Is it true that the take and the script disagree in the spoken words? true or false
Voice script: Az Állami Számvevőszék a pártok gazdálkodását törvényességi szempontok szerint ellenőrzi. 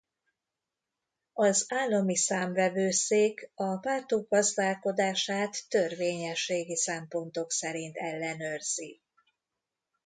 false